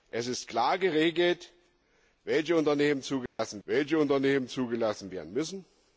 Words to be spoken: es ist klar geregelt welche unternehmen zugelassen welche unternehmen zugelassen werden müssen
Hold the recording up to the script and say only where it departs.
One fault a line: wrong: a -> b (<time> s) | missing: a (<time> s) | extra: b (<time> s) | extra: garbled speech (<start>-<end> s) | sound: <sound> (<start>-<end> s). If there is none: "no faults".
sound: dropout (3.3-3.4 s)